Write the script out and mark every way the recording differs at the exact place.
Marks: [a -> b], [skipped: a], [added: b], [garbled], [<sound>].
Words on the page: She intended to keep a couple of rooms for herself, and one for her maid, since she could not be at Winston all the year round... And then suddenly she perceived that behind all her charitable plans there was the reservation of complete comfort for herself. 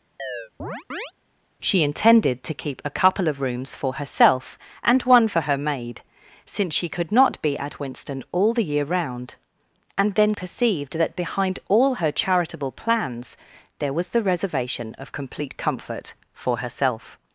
[chirp] She intended to keep a couple of rooms for herself, and one for her maid, since she could not be at Winston all the year round... And then [skipped: suddenly she] perceived that behind all her charitable plans there was the reservation of complete comfort for herself.